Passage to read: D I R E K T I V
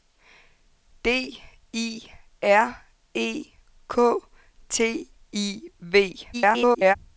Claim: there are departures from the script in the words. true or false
true